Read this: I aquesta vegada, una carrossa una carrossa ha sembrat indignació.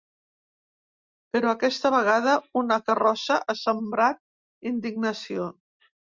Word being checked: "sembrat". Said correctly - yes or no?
yes